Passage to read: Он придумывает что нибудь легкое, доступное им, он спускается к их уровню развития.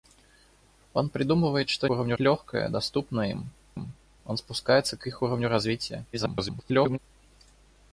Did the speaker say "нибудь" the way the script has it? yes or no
no